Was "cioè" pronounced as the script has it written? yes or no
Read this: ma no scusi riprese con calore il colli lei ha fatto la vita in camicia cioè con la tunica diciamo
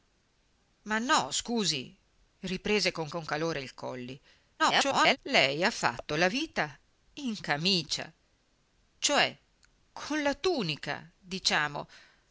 yes